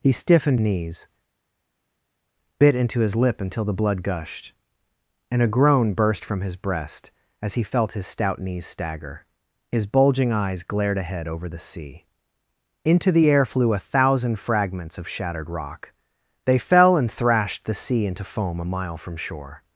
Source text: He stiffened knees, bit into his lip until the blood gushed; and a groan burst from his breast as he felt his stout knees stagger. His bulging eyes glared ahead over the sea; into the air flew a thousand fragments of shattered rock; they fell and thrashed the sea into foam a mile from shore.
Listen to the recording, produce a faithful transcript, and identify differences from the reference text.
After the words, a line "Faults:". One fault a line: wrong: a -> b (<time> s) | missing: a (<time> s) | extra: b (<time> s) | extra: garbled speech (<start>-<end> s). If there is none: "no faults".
He stiffened knees, bit into his lip until the blood gushed; and a groan burst from his breast as he felt his stout knees stagger. His bulging eyes glared ahead over the sea; into the air flew a thousand fragments of shattered rock; they fell and thrashed the sea into foam a mile from shore.
Faults:
no faults